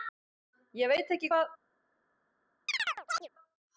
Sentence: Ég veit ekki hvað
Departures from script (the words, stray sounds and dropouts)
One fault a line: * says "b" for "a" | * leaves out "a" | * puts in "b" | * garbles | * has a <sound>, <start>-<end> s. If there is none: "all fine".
* has a chirp, 2.7-3.3 s